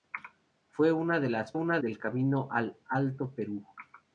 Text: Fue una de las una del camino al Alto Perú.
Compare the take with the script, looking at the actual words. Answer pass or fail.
pass